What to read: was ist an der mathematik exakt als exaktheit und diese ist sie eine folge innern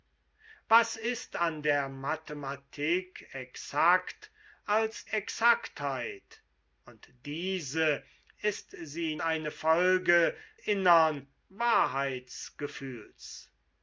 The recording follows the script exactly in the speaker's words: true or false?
true